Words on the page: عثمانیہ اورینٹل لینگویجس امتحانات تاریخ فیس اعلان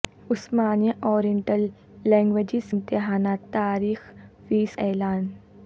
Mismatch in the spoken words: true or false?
false